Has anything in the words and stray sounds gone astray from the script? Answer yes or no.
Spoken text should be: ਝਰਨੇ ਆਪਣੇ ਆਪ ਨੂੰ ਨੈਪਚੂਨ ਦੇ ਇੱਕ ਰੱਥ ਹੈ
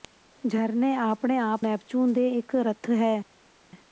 yes